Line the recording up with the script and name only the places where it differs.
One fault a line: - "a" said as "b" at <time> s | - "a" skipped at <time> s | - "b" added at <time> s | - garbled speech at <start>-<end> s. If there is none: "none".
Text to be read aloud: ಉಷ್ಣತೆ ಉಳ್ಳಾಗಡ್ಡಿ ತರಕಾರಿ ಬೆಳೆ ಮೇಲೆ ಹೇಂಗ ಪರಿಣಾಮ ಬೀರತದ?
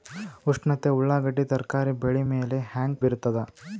- "ಪರಿಣಾಮ" skipped at 3.0 s